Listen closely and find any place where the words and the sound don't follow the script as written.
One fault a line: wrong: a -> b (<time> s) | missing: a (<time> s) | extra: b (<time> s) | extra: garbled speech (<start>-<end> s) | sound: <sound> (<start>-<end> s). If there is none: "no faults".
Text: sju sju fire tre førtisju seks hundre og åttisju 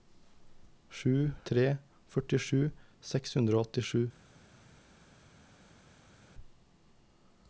missing: sju fire (1.1 s)